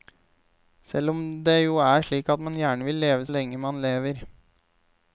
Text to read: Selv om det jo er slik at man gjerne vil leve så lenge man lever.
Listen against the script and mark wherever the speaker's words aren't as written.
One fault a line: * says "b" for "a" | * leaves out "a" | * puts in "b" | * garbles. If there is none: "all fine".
* leaves out "så"